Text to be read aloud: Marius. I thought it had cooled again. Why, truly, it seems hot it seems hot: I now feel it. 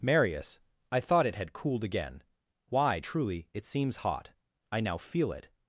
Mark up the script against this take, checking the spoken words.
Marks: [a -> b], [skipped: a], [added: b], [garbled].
Marius. I thought it had cooled again. Why, truly, it seems hot [skipped: it seems hot:] I now feel it.